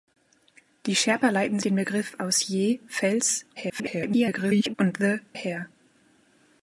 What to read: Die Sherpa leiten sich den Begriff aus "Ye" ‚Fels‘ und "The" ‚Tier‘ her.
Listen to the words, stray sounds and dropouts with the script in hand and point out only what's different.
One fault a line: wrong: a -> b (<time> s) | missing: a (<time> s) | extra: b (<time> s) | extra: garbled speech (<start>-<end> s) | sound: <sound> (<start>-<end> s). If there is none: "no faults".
missing: sich (1.6 s)
extra: garbled speech (3.6-4.7 s)
missing: Tier (5.2 s)